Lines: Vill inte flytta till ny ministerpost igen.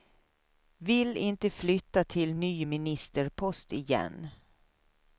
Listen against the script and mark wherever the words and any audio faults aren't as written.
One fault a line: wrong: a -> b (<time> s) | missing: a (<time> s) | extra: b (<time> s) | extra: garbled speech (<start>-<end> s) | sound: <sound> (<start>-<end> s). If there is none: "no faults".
no faults